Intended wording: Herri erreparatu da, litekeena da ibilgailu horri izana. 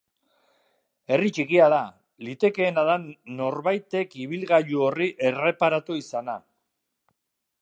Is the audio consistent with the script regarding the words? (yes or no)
no